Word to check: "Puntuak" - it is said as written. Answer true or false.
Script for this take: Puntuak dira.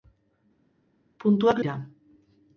true